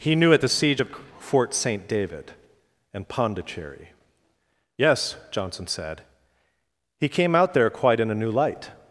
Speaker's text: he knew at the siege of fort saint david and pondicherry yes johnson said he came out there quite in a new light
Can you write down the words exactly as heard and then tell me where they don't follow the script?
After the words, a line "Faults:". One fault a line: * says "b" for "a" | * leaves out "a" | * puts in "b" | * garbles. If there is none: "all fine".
he knew at the siege of fort saint david and pondicherry yes johnson said he came out there quite in a new light
Faults:
all fine